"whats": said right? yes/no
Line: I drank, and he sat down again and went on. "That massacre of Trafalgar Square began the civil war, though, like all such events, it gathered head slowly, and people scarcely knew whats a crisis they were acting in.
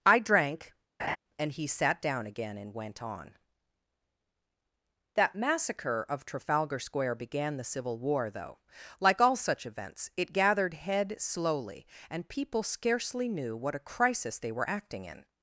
no